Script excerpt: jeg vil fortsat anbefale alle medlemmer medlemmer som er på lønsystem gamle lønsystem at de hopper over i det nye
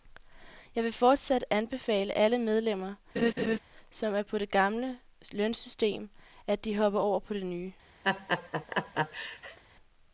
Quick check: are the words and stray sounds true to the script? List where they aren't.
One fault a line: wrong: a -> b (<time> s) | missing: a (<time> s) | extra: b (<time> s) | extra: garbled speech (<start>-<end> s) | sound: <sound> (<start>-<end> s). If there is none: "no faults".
missing: medlemmer (3.0 s)
sound: laugh (3.2-3.6 s)
wrong: lønsystem -> det (4.4 s)
wrong: i -> på (7.2 s)
sound: laugh (8.0-9.6 s)